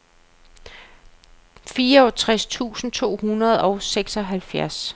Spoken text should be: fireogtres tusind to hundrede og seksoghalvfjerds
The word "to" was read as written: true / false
true